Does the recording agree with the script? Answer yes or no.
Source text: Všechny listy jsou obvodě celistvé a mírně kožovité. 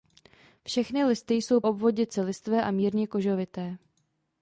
yes